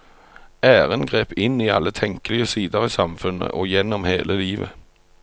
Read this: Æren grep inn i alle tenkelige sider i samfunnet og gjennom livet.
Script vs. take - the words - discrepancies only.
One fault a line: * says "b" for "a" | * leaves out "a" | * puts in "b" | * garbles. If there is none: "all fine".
* puts in "hele"